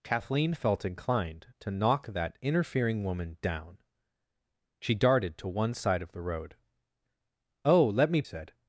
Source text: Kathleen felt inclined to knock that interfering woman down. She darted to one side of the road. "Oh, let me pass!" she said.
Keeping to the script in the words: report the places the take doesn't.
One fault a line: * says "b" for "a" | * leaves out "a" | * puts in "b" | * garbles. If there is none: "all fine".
* leaves out "pass she"